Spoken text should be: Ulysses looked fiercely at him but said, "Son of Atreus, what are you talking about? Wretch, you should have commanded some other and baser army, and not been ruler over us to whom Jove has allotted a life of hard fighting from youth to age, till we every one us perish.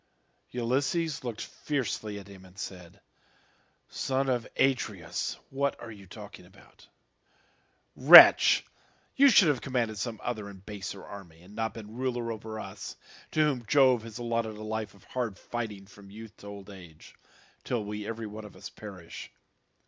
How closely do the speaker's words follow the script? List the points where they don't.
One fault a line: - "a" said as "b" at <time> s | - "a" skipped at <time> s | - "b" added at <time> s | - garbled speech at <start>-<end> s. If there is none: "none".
- "but" said as "and" at 2.4 s
- "old" added at 16.5 s
- "of" added at 18.4 s